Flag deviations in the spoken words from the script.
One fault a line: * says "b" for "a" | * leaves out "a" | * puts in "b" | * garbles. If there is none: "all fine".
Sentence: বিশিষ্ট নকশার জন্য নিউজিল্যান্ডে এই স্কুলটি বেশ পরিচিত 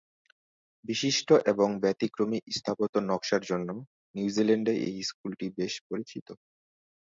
* puts in "এবং ব্যতিক্রমী স্থাপত্য"